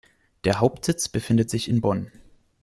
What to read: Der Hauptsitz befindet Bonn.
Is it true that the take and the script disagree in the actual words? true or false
true